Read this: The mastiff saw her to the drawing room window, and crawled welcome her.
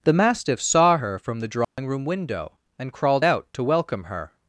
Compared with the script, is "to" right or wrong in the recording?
wrong